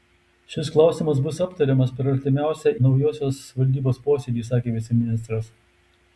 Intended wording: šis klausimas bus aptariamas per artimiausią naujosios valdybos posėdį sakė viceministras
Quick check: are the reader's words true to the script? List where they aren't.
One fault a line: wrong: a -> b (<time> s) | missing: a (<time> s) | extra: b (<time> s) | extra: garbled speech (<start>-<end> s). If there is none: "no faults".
no faults